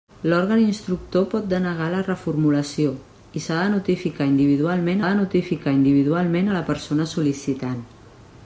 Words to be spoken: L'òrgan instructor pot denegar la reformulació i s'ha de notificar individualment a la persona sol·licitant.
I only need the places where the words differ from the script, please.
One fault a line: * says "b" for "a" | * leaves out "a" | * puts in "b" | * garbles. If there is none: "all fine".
* puts in "de notificar individualment"